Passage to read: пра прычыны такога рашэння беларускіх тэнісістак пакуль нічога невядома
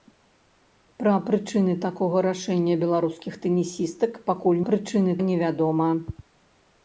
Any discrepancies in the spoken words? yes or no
yes